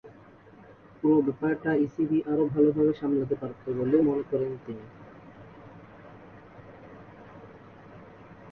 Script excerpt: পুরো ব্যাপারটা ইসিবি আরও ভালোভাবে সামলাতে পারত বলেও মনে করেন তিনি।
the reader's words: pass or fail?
pass